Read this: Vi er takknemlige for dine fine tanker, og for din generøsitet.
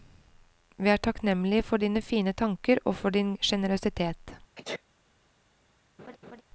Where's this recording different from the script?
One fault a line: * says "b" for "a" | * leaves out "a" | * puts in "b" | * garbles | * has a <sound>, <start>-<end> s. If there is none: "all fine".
* has a sneeze, 4.6-4.8 s
* has a laugh, 6.0-6.4 s